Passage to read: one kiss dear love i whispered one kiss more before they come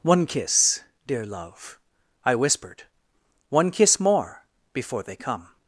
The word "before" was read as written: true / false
true